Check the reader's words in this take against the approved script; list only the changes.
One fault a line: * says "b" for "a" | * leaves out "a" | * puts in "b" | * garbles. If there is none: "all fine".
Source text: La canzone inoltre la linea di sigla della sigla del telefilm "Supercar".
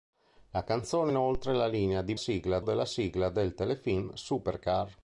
all fine